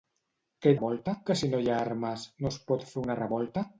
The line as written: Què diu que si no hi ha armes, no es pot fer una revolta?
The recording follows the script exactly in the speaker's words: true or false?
false